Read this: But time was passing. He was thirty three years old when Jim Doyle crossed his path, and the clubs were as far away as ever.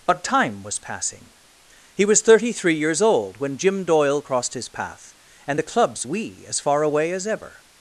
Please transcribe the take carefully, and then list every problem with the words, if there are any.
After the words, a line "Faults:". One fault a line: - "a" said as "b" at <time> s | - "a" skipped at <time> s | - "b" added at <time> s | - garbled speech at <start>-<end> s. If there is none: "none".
But time was passing. He was thirty three years old when Jim Doyle crossed his path, and the clubs we as far away as ever.
Faults:
- "were" said as "we" at 6.0 s